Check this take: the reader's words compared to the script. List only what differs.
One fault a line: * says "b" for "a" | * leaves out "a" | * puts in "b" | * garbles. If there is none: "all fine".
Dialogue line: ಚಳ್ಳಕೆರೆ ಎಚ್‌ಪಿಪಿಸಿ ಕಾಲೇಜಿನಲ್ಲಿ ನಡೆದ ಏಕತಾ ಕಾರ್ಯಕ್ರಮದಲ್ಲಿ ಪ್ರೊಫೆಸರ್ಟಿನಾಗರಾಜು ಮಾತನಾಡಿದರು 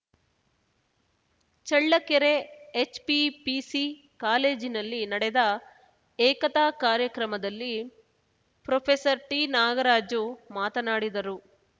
all fine